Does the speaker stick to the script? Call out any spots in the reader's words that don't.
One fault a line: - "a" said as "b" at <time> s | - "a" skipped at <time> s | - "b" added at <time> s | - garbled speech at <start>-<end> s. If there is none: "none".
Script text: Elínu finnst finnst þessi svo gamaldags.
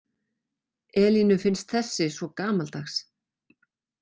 - "finnst" skipped at 1.8 s